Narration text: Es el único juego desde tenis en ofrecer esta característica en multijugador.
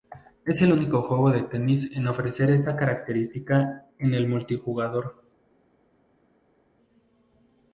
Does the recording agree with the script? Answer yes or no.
no